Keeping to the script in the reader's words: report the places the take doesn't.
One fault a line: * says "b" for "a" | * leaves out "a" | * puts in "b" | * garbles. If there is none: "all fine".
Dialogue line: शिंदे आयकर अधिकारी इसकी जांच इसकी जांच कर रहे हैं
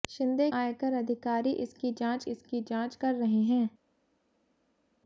all fine